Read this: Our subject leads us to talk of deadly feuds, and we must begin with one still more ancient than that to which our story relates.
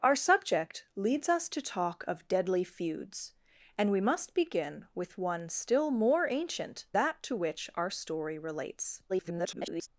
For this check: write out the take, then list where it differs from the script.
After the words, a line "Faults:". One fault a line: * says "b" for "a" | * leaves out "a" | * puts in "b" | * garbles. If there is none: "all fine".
Our subject leads us to talk of deadly feuds, and we must begin with one still more ancient that to which our story relates. [garbled]
Faults:
* leaves out "than"
* garbles